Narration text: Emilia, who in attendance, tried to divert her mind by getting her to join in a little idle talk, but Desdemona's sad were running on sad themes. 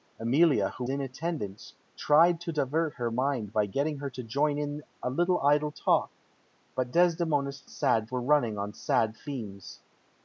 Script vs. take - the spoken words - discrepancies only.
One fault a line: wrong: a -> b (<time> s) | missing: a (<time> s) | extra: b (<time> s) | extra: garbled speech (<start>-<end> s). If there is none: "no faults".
no faults